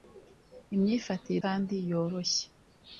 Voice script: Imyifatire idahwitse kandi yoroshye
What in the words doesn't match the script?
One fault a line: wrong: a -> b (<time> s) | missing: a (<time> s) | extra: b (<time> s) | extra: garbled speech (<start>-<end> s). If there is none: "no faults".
missing: idahwitse (1.4 s)